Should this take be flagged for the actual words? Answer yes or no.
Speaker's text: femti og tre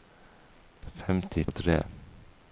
no